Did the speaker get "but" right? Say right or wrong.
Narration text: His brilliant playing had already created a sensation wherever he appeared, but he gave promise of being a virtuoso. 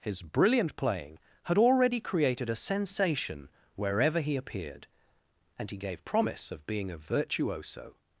wrong